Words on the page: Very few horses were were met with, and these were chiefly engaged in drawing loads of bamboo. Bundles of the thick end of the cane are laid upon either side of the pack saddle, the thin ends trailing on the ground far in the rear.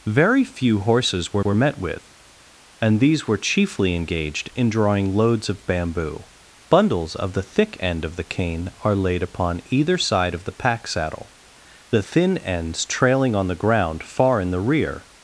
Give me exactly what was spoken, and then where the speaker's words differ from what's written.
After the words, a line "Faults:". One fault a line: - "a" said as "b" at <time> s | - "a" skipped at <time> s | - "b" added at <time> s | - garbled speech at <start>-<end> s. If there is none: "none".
Very few horses were were met with, and these were chiefly engaged in drawing loads of bamboo. Bundles of the thick end of the cane are laid upon either side of the pack saddle, the thin ends trailing on the ground far in the rear.
Faults:
none